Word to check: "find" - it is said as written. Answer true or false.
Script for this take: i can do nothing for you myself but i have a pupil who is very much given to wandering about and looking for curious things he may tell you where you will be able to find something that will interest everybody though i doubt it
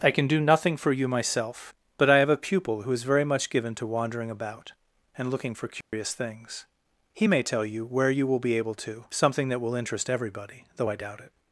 false